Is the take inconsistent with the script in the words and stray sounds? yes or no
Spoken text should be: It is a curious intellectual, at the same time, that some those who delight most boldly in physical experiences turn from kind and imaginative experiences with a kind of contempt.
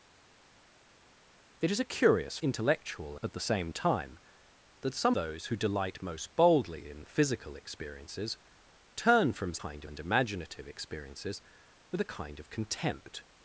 no